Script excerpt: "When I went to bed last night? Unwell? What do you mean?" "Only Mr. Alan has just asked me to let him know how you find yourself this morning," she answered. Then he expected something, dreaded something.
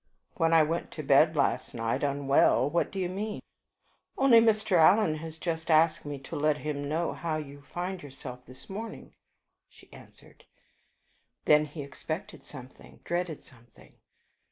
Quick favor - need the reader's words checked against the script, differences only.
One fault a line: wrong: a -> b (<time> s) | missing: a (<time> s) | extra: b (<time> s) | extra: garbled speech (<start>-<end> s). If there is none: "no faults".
no faults